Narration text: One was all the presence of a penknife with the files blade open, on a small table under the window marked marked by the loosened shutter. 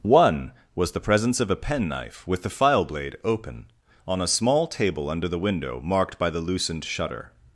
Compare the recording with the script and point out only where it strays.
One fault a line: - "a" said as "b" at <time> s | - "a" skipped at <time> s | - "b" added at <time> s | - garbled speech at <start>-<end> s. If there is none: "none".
- "all" skipped at 0.9 s
- "files" said as "file" at 2.5 s
- "marked" skipped at 6.2 s